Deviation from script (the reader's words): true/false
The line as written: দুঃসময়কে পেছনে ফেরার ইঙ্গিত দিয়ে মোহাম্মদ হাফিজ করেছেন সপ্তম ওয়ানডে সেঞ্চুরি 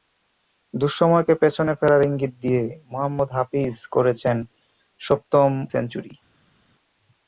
true